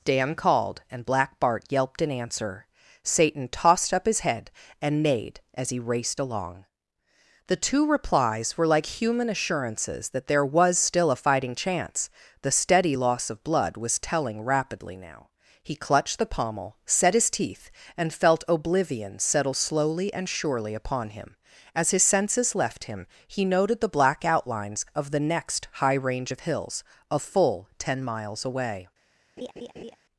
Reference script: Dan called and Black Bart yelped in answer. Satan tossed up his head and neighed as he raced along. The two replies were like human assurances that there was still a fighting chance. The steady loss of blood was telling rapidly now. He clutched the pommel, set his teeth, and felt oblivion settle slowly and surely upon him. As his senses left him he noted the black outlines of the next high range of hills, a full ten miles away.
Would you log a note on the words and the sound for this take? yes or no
yes